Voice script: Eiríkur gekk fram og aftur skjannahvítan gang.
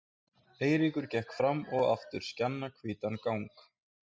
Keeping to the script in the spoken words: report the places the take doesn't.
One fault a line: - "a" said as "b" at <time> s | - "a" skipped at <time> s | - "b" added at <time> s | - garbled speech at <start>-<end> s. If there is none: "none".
none